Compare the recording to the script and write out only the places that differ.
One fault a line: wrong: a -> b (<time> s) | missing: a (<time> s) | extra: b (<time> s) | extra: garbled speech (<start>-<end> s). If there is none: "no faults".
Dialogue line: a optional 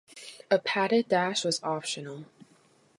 extra: padded dash was (0.5 s)